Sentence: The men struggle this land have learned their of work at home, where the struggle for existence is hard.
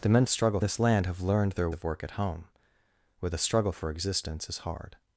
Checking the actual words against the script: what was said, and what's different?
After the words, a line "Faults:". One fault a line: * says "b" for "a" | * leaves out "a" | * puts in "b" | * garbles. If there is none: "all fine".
The men struggle this land have learned their of work at home, where the struggle for existence is hard.
Faults:
all fine